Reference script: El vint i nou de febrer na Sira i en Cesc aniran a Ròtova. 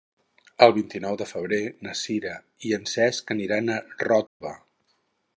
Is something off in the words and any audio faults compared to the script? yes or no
yes